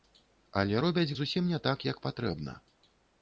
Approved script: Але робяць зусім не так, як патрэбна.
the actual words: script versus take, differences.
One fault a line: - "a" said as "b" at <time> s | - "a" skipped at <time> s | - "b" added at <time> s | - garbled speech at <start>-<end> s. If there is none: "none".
none